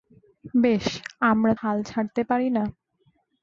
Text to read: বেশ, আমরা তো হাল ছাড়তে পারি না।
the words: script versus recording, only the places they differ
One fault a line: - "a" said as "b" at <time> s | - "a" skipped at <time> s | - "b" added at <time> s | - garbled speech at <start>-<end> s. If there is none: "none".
- "তো" skipped at 1.5 s